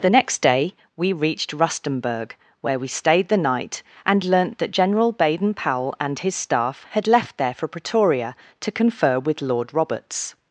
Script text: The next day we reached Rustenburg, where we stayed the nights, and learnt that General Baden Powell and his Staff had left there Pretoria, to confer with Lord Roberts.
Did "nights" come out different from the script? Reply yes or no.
yes